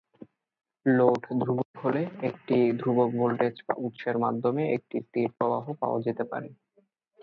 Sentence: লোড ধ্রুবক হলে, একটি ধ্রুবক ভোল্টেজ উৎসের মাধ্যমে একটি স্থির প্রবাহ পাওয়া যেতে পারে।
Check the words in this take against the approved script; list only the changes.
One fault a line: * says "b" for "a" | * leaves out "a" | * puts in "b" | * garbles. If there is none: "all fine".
all fine